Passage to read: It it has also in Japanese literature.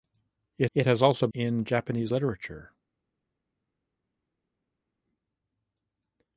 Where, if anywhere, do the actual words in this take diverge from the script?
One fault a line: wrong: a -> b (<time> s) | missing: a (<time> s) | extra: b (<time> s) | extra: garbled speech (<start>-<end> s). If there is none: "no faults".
no faults